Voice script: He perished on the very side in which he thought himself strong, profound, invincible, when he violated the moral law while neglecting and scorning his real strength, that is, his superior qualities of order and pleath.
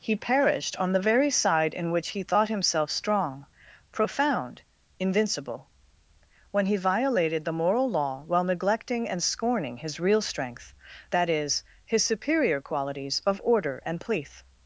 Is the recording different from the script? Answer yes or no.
no